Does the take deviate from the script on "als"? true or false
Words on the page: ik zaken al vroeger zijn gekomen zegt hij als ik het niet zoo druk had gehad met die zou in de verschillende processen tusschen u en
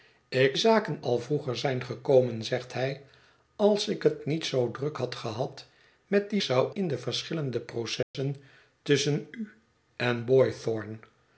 false